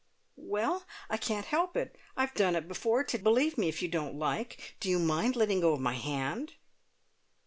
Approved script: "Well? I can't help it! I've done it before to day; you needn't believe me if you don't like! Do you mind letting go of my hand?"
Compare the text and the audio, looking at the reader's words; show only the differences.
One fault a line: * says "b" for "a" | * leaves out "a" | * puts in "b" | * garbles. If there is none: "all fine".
* leaves out "day you needn't"